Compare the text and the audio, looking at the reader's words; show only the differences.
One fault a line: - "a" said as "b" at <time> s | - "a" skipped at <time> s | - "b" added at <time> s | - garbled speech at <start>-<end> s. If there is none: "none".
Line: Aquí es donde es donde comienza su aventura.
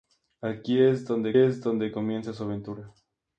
none